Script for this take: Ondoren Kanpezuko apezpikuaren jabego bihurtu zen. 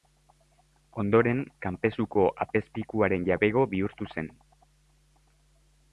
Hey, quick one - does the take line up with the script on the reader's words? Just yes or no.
yes